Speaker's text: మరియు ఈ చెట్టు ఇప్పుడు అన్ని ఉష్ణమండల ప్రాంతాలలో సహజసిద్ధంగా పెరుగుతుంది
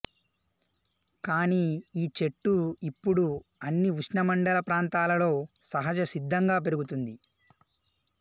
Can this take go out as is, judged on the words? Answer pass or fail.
fail